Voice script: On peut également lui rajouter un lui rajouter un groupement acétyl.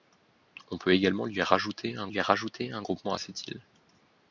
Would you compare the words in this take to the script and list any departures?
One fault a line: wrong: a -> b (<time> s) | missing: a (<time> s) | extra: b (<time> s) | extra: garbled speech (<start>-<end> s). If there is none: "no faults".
no faults